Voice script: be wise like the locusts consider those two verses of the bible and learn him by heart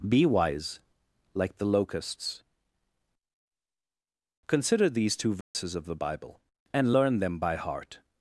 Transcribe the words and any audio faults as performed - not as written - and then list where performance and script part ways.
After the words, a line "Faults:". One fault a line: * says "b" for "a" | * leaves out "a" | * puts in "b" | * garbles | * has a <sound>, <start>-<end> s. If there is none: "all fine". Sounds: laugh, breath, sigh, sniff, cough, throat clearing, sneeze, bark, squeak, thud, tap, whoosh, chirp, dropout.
be wise like the locusts consider these two verses of the bible and learn them by heart
Faults:
* says "these" for "those"
* has a dropout, 5.4-5.5 s
* says "them" for "him"